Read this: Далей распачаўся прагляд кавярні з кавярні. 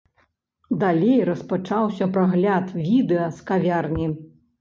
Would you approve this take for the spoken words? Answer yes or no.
no